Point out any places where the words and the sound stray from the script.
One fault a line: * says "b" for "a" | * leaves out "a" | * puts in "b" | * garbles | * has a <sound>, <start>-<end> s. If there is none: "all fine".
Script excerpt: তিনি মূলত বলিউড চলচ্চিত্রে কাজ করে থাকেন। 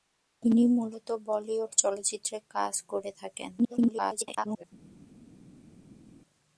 * garbles